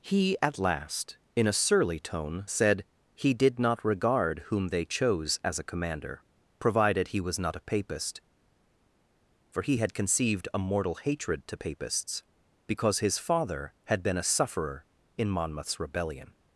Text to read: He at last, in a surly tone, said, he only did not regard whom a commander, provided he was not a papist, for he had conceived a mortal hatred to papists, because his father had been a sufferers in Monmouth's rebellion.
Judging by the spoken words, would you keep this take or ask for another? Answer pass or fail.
fail